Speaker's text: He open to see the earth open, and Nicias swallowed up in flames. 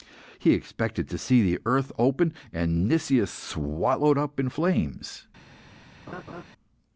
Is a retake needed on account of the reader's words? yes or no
yes